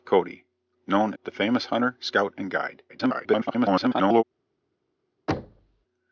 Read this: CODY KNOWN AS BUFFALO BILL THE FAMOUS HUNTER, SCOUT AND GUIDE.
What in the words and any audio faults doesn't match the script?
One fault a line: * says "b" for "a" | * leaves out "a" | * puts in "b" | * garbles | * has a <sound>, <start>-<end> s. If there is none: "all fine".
* leaves out "AS BUFFALO BILL"
* garbles
* has a thud, 5.3-5.8 s